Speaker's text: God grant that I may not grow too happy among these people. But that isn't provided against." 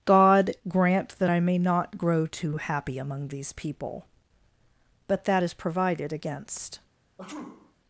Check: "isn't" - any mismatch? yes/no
yes